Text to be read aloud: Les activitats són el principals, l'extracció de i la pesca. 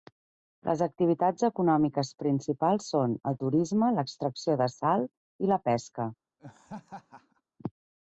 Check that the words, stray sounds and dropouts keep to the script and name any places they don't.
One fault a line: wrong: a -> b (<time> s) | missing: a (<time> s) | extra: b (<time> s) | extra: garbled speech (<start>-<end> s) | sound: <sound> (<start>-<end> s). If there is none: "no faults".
extra: econòmiques principals (1.5 s)
wrong: principals -> turisme (3.4 s)
extra: sal (4.8 s)
sound: laugh (6.4-7.4 s)